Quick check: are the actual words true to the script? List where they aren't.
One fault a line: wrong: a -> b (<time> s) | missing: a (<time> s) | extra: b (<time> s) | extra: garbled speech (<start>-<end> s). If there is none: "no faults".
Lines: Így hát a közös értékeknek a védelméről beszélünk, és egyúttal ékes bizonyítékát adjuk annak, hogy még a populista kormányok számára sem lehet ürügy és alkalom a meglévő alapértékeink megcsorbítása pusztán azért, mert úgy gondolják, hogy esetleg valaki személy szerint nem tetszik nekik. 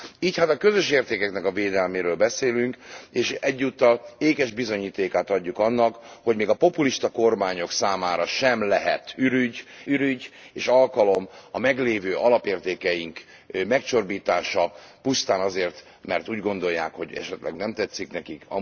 extra: ürügy (9.9 s)
missing: valaki személy szerint (17.6 s)